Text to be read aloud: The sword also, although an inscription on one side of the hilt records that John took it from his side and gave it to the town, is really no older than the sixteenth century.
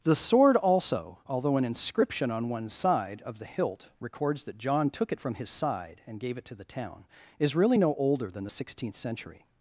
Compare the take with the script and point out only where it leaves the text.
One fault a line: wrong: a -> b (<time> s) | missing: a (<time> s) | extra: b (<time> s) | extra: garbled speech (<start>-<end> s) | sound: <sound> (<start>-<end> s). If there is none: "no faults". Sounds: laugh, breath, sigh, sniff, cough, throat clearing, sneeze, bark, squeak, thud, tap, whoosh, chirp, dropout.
no faults